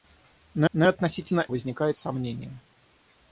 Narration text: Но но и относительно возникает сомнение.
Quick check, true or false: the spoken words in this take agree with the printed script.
true